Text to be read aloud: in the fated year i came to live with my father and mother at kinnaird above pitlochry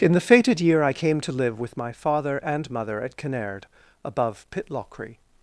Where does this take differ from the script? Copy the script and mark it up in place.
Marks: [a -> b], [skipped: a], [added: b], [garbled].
in the fated year i came to live with my father and mother at kinnaird above pitlochry